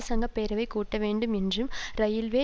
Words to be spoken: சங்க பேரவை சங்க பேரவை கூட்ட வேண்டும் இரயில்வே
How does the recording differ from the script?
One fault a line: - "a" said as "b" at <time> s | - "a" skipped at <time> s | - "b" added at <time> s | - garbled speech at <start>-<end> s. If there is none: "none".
- "சங்க பேரவை" skipped at 0.7 s
- "என்றும்" added at 1.3 s